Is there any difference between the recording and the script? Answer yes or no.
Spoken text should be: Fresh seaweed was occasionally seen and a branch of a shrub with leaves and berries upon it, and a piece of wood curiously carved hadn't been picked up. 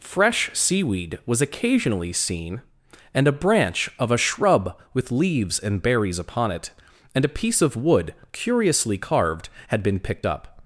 yes